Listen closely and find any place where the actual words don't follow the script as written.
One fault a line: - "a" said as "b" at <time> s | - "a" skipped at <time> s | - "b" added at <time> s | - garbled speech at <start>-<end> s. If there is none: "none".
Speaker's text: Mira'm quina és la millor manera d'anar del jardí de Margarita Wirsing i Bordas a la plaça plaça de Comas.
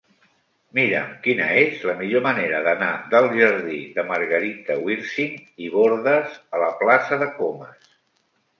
- "plaça" skipped at 7.2 s